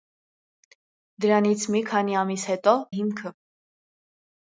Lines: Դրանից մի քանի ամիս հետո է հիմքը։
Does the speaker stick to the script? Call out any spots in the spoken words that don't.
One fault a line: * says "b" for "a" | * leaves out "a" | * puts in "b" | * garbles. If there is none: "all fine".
all fine